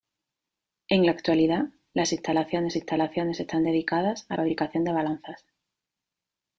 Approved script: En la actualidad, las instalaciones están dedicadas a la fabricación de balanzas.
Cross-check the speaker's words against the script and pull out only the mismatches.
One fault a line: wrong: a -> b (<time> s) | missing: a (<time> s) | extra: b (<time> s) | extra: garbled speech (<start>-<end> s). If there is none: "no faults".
extra: instalaciones (2.7 s)
missing: la (4.4 s)